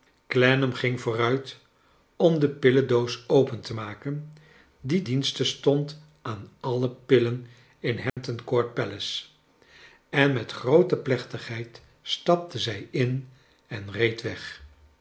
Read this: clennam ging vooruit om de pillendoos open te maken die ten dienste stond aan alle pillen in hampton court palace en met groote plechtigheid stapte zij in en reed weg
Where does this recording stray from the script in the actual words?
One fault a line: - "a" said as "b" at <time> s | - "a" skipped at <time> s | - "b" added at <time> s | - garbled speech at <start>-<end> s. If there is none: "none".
- "ten" skipped at 5.0 s